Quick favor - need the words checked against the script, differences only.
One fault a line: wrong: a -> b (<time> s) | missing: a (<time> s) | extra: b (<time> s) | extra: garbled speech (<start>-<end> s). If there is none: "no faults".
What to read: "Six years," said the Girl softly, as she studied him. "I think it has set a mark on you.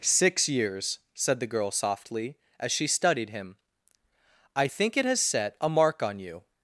no faults